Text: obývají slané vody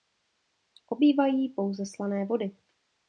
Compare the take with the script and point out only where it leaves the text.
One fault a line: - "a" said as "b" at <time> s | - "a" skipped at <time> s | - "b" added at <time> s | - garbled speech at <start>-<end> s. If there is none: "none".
- "pouze" added at 1.5 s